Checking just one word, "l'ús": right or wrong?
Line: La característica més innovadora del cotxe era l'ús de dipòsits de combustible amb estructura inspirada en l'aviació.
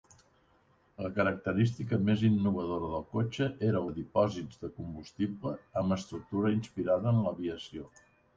wrong